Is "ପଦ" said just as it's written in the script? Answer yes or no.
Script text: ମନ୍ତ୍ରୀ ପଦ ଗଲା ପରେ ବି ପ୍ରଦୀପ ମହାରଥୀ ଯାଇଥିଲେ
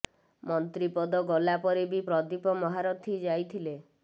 yes